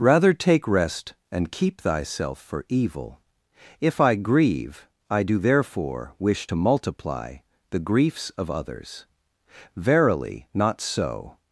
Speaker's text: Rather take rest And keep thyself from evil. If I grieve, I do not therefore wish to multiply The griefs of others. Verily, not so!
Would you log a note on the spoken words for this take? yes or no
yes